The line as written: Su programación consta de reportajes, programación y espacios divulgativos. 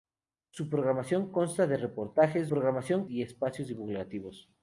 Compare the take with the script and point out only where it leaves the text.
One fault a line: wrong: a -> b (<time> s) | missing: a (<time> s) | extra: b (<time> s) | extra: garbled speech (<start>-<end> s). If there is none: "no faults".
no faults